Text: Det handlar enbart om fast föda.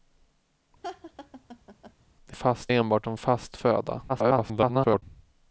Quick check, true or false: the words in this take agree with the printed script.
false